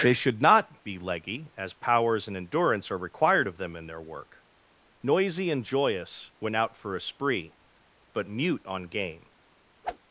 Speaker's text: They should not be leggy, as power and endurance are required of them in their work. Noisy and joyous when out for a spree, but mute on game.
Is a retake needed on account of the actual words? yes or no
yes